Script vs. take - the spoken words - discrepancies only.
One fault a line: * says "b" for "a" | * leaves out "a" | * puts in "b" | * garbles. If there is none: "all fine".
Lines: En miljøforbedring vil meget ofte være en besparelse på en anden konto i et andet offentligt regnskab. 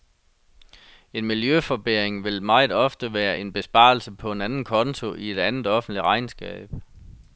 all fine